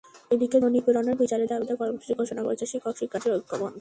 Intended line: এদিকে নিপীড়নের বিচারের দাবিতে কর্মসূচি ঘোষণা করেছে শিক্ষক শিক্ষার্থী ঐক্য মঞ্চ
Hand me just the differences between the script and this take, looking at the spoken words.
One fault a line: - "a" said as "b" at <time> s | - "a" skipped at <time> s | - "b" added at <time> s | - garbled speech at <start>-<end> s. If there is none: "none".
none